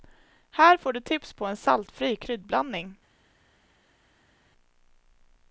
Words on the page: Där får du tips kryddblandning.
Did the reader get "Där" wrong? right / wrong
wrong